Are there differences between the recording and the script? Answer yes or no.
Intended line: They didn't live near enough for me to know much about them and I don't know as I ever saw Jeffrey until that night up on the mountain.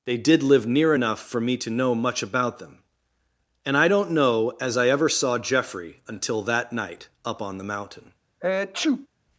yes